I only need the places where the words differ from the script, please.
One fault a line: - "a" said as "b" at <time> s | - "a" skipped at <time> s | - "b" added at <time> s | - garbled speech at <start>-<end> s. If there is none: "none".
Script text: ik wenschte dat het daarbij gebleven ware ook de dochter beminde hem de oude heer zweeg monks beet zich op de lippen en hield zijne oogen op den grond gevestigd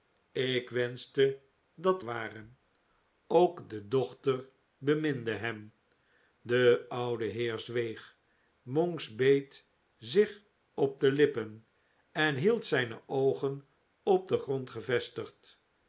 - "het daarbij gebleven" skipped at 2.0 s